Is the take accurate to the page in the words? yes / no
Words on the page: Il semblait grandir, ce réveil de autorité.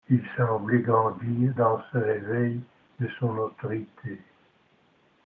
no